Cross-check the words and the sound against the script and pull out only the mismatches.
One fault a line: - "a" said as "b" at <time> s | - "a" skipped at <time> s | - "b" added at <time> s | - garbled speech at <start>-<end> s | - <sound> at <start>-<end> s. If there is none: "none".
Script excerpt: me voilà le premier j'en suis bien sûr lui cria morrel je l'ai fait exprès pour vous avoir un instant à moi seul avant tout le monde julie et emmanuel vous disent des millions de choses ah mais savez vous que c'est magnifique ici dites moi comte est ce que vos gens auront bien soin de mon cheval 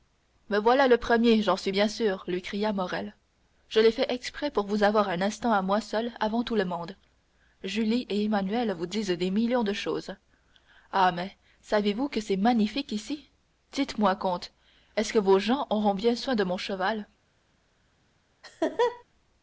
- laugh at 18.4-19.0 s